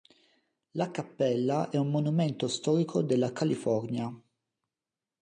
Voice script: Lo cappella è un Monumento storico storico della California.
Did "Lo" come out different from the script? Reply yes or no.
yes